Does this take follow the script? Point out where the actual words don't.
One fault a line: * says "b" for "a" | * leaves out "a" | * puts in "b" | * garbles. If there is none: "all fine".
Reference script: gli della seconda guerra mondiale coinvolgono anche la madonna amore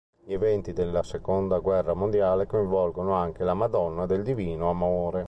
* puts in "eventi"
* puts in "del divino"